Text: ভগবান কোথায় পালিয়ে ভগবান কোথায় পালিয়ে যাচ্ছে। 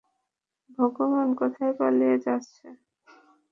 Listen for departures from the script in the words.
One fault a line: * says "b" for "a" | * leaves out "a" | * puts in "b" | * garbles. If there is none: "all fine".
* leaves out "ভগবান কোথায় পালিয়ে"